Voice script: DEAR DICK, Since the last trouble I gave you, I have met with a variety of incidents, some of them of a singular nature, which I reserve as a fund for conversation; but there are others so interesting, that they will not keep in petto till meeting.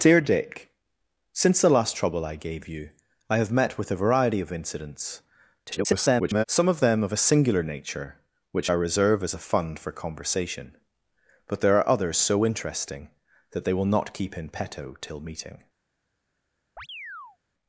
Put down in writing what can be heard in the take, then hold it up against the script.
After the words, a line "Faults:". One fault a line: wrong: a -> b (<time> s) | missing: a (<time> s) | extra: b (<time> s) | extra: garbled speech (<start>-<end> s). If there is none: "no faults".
DEAR DICK, Since the last trouble I gave you, I have met with a variety of incidents, [garbled] some of them of a singular nature, which I reserve as a fund for conversation; but there are others so interesting, that they will not keep in petto till meeting.
Faults:
extra: garbled speech (5.7-6.4 s)